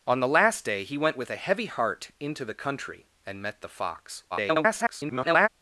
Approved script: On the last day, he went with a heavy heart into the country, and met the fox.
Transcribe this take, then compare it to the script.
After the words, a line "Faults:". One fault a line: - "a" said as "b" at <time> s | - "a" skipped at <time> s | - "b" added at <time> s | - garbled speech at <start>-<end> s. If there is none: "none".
On the last day, he went with a heavy heart into the country, and met the fox. [garbled]
Faults:
- garbled speech at 4.3-5.5 s